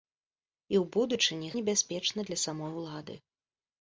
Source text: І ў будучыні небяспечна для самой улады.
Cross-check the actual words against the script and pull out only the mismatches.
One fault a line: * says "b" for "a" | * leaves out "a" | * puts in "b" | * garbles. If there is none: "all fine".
all fine